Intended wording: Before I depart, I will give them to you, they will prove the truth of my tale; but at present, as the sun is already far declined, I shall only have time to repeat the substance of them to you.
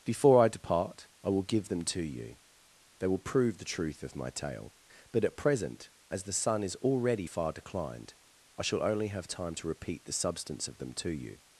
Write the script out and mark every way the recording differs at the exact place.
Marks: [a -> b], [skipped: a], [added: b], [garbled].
Before I depart, I will give them to you, they will prove the truth of my tale; but at present, as the sun is already far declined, I shall only have time to repeat the substance of them to you.